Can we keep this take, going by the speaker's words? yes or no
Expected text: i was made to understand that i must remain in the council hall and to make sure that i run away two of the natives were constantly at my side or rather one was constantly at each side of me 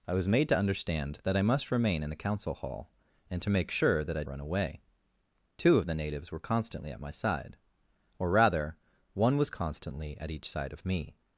yes